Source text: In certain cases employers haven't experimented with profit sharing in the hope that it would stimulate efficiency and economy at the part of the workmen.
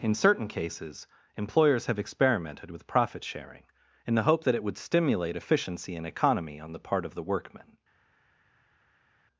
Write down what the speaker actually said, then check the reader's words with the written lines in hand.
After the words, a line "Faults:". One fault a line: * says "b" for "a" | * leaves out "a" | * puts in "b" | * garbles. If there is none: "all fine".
In certain cases employers have experimented with profit sharing in the hope that it would stimulate efficiency and economy on the part of the workmen.
Faults:
* says "have" for "haven't"
* says "on" for "at"